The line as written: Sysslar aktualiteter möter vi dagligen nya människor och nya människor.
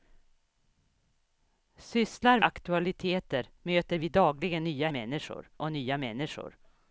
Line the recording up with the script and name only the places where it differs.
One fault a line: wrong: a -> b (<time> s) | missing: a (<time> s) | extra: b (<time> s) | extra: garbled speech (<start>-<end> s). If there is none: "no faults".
no faults